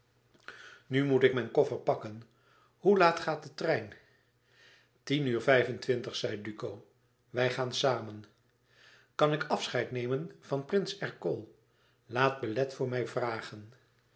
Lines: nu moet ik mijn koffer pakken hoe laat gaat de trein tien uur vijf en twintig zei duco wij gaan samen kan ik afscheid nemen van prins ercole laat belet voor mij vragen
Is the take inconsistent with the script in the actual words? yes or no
no